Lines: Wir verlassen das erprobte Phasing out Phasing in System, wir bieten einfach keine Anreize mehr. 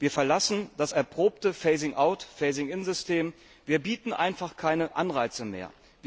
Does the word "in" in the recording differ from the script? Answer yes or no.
no